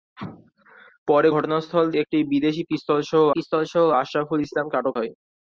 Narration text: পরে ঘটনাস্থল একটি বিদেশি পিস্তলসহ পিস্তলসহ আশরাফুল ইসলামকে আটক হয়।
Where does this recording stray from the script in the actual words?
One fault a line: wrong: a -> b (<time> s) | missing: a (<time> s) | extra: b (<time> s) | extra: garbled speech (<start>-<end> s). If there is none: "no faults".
no faults